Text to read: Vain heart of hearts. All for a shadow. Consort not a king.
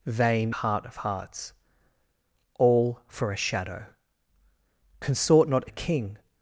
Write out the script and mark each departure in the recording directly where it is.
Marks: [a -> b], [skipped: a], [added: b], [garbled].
Vain heart of hearts. All for a shadow. Consort not a king.